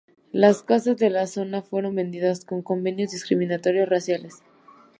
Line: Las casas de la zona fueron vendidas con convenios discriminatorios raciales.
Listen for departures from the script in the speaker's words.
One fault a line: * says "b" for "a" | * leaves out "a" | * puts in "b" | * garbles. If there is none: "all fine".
all fine